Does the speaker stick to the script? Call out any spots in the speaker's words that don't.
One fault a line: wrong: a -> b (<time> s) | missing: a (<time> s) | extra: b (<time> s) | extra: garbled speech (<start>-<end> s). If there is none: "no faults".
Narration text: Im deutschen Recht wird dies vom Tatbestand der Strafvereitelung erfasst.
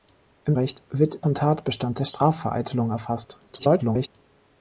missing: deutschen (0.6 s)
missing: dies (1.2 s)
extra: garbled speech (3.5-4.1 s)